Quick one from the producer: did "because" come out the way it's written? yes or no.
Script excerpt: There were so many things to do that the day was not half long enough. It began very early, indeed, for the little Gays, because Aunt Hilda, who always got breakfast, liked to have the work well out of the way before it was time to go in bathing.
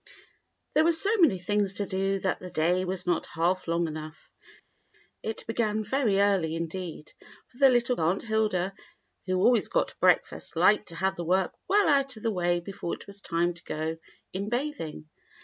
no